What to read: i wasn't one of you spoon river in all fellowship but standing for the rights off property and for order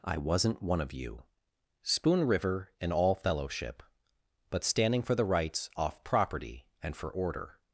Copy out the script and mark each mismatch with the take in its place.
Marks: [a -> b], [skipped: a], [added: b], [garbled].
i wasn't one of you spoon river in all fellowship but standing for the rights off property and for order